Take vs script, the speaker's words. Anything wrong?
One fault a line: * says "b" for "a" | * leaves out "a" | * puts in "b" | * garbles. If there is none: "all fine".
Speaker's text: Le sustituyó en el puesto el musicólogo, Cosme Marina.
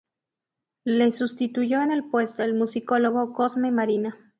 all fine